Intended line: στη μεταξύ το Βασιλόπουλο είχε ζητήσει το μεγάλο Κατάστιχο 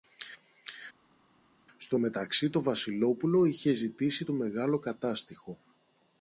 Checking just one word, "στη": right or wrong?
wrong